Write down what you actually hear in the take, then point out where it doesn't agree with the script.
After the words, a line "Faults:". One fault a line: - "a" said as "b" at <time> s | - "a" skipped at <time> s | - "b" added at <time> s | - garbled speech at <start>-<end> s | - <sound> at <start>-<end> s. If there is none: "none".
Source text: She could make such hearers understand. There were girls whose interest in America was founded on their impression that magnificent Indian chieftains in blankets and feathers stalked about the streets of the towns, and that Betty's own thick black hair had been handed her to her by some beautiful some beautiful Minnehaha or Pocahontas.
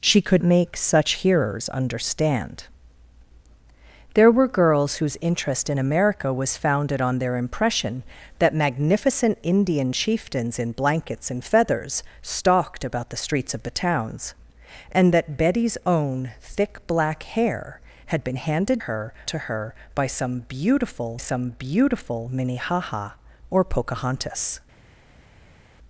She could make such hearers understand. There were girls whose interest in America was founded on their impression that magnificent Indian chieftains in blankets and feathers stalked about the streets of the towns, and that Betty's own thick black hair had been handed her to her by some beautiful some beautiful Minnehaha or Pocahontas.
Faults:
none